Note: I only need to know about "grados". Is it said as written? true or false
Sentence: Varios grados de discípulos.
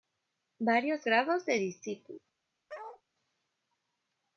true